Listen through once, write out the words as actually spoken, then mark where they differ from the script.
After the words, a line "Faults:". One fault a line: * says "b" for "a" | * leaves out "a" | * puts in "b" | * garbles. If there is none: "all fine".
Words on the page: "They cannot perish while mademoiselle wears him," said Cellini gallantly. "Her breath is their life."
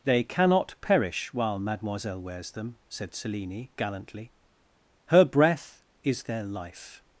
"They cannot perish while mademoiselle wears them," said Cellini gallantly. "Her breath is their life."
Faults:
* says "them" for "him"